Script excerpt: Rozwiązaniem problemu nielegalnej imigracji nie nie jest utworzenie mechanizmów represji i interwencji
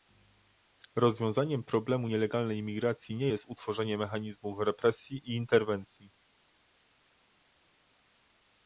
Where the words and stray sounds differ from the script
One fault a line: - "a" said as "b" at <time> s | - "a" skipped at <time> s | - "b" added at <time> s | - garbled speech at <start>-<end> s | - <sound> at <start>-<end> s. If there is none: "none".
- "nie" skipped at 3.3 s